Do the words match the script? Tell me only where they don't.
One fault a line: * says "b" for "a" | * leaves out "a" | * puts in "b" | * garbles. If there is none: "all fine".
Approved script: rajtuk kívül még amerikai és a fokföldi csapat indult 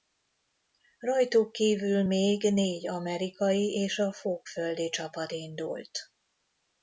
* puts in "négy"